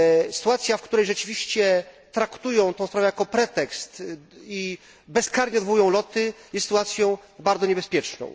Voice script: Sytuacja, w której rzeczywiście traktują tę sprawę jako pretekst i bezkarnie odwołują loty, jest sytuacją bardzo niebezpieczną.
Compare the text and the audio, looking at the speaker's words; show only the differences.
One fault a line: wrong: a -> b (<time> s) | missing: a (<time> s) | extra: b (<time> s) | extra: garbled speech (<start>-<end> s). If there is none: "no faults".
no faults